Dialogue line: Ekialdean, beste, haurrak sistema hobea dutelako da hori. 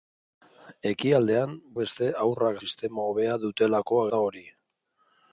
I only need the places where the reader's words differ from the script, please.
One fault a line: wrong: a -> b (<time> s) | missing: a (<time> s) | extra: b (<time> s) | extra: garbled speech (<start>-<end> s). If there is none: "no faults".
no faults